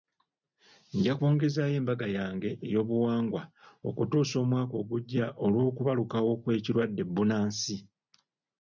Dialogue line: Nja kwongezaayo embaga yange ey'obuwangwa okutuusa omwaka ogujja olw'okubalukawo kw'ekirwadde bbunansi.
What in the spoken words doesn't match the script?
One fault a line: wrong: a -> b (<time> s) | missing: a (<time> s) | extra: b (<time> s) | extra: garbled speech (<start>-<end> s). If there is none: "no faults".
no faults